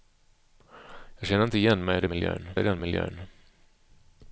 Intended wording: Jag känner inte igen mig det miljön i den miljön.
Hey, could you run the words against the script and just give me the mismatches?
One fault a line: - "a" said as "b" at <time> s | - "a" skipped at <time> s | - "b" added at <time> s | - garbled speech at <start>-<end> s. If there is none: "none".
none